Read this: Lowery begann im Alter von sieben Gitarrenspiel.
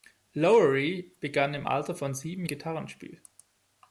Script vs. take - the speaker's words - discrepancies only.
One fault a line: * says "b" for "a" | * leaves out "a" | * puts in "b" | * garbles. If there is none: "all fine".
all fine